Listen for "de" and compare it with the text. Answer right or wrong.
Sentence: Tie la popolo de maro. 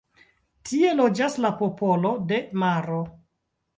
right